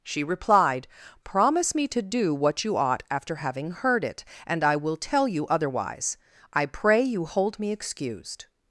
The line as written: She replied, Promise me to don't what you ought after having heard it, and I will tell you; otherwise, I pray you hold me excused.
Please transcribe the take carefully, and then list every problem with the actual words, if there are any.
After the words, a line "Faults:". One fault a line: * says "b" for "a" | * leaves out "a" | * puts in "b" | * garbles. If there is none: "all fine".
She replied, Promise me to do what you ought after having heard it, and I will tell you; otherwise, I pray you hold me excused.
Faults:
* says "do" for "don't"